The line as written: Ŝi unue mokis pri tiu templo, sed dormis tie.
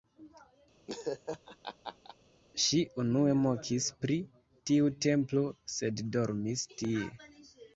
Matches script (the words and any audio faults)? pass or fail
fail